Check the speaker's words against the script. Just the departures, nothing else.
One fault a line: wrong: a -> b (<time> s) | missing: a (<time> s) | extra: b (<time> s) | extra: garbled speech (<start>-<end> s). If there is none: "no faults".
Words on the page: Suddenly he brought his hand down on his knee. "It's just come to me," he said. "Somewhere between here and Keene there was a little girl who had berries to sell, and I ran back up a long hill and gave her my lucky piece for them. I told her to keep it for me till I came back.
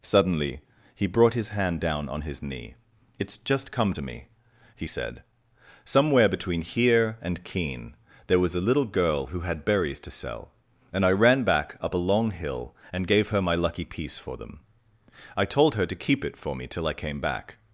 no faults